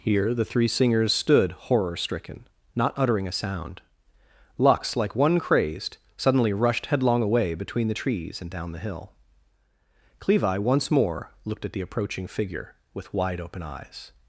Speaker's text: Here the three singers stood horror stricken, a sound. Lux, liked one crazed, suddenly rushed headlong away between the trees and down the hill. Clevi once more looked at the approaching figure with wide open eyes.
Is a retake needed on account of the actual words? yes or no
yes